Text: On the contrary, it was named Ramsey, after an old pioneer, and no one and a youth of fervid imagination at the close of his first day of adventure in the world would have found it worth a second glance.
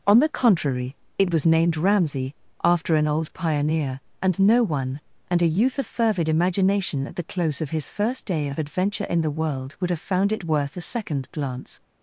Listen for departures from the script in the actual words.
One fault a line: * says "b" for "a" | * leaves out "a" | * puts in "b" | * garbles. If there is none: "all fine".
all fine